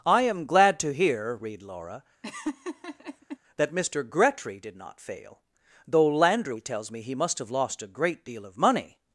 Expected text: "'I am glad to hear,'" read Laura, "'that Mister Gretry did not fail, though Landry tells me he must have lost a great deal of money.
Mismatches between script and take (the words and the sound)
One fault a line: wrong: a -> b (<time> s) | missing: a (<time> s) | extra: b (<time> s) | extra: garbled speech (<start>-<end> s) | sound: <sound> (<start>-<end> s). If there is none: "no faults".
sound: laugh (2.2-3.4 s)